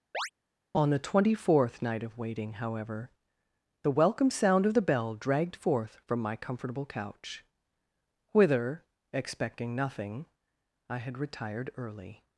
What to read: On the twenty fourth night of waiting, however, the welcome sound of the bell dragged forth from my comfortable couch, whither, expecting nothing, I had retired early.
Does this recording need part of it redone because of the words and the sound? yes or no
yes